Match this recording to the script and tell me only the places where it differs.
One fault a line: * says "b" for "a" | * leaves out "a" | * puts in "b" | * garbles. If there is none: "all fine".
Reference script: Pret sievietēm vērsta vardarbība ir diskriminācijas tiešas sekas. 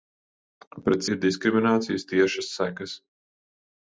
* leaves out "sievietēm vērsta vardarbība"